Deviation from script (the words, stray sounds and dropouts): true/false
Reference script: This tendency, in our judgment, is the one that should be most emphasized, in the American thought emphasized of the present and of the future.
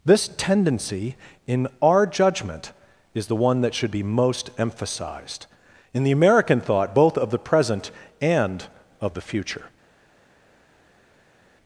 true